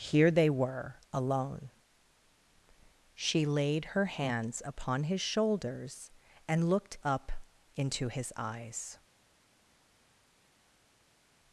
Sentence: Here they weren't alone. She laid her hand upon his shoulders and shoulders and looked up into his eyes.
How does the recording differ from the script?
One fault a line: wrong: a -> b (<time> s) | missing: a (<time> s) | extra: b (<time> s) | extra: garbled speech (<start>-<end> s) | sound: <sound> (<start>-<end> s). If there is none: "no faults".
wrong: weren't -> were (0.5 s)
wrong: hand -> hands (4.0 s)
missing: shoulders and (6.7 s)